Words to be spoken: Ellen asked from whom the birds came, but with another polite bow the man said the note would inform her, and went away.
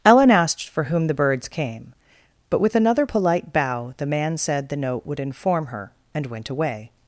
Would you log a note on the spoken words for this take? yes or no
yes